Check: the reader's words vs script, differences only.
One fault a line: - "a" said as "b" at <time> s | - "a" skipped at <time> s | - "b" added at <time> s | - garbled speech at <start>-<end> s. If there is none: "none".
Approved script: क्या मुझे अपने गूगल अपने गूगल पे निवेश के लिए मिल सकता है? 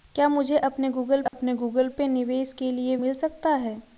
none